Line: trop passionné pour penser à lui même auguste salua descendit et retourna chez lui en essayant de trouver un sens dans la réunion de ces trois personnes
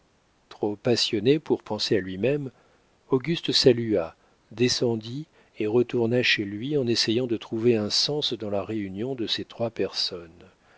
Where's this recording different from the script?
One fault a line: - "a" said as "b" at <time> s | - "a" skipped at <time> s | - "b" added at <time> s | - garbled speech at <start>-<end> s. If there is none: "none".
none